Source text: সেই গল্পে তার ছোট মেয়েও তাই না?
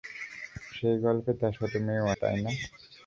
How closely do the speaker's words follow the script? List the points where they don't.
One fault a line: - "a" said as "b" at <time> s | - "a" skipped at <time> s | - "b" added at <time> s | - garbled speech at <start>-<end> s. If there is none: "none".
none